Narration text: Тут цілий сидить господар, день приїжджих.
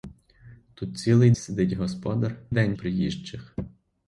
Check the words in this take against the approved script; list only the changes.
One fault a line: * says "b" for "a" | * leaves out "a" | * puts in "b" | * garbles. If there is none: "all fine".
all fine